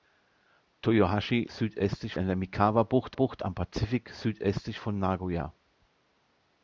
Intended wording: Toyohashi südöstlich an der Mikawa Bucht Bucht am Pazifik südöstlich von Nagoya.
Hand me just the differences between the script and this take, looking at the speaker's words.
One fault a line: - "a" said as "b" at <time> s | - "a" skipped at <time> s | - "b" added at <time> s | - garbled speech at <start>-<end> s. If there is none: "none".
none